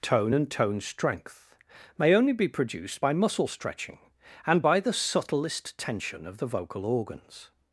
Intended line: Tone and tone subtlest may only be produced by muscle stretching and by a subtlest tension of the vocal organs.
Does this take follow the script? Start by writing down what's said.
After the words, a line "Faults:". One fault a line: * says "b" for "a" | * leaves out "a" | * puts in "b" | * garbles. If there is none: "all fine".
Tone and tone strength may only be produced by muscle stretching and by the subtlest tension of the vocal organs.
Faults:
* says "strength" for "subtlest"
* says "the" for "a"